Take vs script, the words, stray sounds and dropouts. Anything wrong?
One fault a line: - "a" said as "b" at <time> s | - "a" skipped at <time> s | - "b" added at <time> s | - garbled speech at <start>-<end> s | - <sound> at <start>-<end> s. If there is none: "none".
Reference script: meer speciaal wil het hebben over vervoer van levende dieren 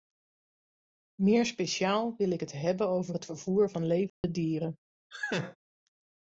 - "ik" added at 2.3 s
- "het" added at 3.1 s
- dropout at 4.1-4.2 s
- laugh at 5.1-5.6 s